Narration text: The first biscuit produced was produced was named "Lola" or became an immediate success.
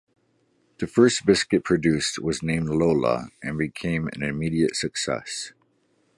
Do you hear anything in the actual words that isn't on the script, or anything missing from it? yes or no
yes